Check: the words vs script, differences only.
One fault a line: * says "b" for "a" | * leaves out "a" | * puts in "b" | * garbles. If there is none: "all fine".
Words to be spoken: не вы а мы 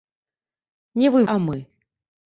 all fine